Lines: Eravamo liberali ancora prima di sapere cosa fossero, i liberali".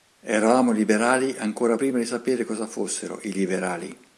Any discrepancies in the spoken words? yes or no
no